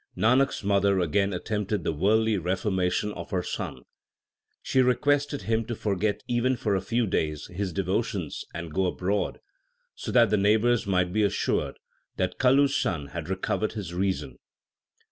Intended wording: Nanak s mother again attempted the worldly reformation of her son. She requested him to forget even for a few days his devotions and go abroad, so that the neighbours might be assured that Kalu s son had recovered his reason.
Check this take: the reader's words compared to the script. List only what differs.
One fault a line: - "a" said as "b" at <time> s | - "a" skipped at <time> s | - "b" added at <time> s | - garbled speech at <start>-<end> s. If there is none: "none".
none